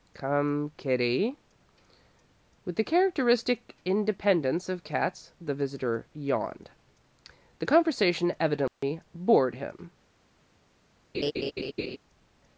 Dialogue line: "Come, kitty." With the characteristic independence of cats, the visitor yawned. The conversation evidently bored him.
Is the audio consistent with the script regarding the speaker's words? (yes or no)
yes